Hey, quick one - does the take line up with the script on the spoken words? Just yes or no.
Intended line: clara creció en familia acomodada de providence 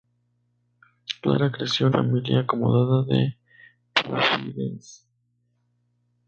yes